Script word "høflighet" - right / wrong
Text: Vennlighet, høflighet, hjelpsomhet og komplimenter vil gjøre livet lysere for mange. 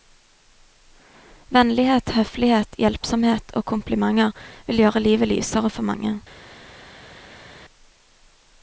right